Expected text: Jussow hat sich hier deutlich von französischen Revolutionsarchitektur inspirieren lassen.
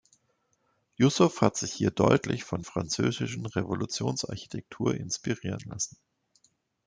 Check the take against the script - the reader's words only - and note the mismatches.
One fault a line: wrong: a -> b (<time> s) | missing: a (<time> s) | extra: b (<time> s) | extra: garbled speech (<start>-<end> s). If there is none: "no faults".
no faults